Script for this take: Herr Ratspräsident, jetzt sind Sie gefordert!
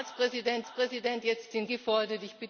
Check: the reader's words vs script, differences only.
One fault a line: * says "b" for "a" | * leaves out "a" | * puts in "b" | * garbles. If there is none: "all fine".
* puts in "Ratspräsident"
* leaves out "Sie"